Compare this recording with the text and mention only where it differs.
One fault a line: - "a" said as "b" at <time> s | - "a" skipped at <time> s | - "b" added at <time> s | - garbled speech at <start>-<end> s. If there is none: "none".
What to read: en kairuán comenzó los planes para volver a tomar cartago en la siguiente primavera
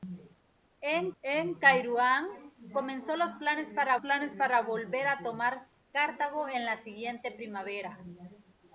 - "en" added at 1.2 s
- "planes para" added at 4.0 s